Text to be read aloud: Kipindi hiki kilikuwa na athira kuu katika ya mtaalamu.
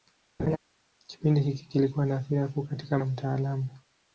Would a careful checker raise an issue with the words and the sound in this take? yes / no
yes